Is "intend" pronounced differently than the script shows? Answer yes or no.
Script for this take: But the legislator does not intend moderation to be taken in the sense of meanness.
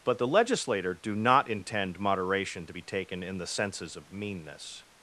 no